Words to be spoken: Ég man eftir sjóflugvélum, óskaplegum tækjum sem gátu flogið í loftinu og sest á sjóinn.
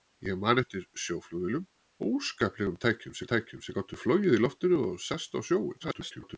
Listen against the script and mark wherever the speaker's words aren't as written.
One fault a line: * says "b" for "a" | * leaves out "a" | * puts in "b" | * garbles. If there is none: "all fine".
* puts in "tækjum sem"
* garbles